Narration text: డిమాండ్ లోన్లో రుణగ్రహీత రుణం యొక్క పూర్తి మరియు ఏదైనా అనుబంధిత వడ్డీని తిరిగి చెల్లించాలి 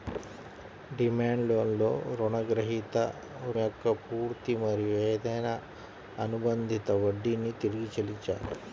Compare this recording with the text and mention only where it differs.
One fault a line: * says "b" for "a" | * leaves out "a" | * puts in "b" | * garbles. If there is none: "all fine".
* leaves out "రుణం"